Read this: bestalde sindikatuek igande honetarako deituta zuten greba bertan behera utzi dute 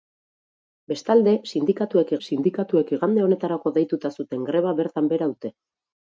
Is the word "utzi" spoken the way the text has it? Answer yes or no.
no